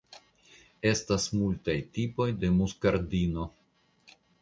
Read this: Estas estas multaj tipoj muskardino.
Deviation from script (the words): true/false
true